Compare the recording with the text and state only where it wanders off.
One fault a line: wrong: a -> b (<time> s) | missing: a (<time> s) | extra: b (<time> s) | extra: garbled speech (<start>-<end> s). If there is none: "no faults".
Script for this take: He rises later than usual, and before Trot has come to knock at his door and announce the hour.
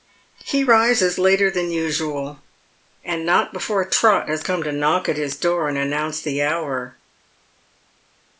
extra: not (3.2 s)